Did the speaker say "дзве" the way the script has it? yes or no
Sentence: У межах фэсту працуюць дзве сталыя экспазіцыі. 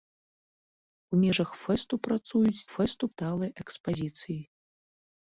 no